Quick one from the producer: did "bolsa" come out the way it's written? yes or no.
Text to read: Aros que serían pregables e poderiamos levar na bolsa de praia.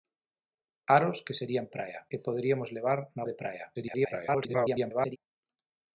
no